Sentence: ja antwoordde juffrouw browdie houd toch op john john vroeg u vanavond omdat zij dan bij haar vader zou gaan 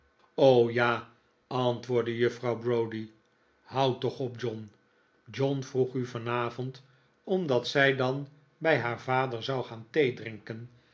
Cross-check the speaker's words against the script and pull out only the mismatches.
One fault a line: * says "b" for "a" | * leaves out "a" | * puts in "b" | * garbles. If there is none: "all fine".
all fine